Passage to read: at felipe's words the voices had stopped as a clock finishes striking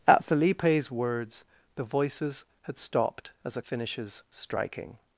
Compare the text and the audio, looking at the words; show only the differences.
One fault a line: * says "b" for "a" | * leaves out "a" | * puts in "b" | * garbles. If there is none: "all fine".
* leaves out "clock"